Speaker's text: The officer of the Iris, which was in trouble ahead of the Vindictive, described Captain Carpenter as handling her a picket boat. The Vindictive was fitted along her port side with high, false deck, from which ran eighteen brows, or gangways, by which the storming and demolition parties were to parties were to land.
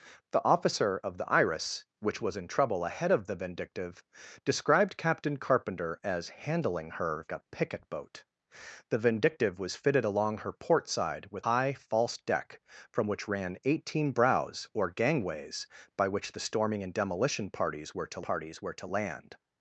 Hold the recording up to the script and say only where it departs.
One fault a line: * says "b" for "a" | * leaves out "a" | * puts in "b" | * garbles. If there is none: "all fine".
all fine